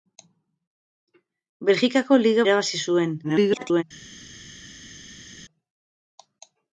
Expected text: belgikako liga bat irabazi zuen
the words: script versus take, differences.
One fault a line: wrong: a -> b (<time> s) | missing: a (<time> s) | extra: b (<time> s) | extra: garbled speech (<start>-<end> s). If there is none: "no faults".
missing: bat (2.5 s)
extra: garbled speech (3.2-3.8 s)